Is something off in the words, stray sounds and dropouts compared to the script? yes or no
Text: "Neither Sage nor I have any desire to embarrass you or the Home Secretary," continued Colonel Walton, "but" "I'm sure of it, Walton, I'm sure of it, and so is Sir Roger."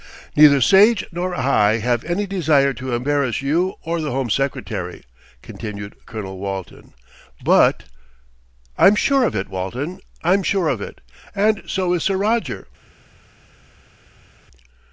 no